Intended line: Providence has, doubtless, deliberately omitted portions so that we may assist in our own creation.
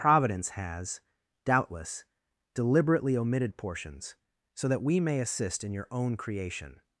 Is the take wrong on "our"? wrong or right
wrong